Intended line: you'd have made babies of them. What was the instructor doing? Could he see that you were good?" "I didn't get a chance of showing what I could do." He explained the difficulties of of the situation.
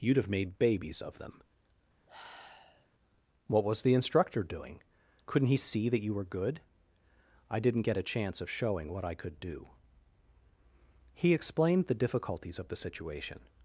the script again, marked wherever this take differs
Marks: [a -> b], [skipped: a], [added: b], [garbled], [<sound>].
you'd have made babies of them. [sigh] What was the instructor doing? [Could -> Couldn't] he see that you were good?" "I didn't get a chance of showing what I could do." He explained the difficulties of [skipped: of] the situation.